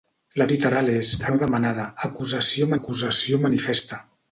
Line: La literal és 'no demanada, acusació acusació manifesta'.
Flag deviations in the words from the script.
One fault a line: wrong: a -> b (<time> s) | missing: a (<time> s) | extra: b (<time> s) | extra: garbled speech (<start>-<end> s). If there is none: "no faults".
no faults